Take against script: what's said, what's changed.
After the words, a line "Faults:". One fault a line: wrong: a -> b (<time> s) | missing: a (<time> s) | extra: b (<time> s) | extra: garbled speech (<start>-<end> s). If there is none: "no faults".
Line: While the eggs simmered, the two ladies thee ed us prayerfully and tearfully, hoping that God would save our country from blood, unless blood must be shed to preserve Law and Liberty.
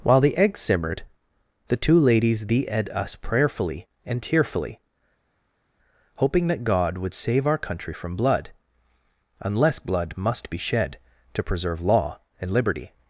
While the eggs simmered, the two ladies thee ed us prayerfully and tearfully, hoping that God would save our country from blood, unless blood must be shed to preserve Law and Liberty.
Faults:
no faults